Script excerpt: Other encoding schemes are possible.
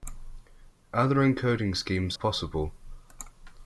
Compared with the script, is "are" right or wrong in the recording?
wrong